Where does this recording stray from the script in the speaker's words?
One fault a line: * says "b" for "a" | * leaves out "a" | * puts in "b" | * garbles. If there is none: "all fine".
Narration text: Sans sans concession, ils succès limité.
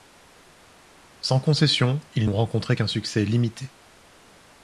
* leaves out "sans"
* puts in "n'ont rencontré qu'un"